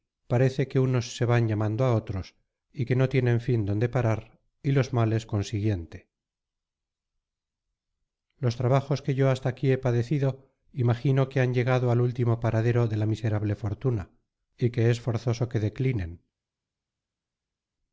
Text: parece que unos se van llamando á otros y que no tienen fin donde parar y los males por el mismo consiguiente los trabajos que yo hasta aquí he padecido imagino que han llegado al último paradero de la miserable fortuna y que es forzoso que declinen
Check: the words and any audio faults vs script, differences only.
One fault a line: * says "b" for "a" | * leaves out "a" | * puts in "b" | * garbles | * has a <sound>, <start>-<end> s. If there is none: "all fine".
* leaves out "por el mismo"